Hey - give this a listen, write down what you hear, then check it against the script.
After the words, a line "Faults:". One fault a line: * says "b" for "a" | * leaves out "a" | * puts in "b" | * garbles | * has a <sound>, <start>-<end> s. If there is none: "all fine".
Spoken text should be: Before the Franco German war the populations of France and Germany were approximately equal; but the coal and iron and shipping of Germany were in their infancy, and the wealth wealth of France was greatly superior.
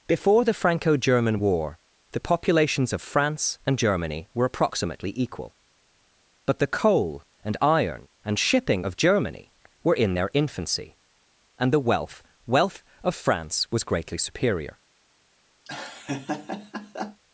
Before the Franco German war the populations of France and Germany were approximately equal; but the coal and iron and shipping of Germany were in their infancy, and the wealth wealth of France was greatly superior.
Faults:
* has a laugh, 15.7-17.2 s